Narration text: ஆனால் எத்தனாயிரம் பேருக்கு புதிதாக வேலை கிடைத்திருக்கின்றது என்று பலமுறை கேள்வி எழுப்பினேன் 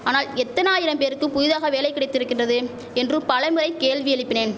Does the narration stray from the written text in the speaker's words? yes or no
no